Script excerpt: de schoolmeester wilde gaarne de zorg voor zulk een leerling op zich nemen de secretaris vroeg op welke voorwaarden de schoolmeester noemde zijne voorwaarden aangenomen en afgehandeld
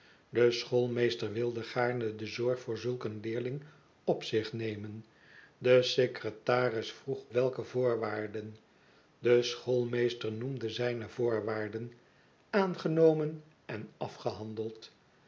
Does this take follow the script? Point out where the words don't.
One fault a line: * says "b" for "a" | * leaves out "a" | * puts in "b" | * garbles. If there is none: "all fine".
* leaves out "op"